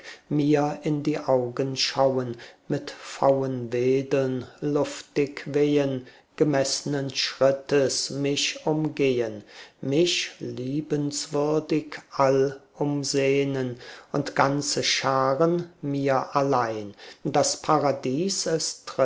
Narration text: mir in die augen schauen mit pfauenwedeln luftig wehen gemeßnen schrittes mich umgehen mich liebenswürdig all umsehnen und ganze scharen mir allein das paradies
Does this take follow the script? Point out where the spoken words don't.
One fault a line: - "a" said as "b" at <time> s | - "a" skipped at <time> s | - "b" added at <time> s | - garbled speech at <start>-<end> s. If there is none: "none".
none